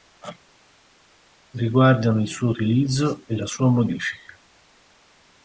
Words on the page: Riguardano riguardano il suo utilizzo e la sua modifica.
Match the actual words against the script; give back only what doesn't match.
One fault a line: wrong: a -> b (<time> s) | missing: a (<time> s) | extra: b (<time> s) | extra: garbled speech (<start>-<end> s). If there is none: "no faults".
missing: riguardano (2.2 s)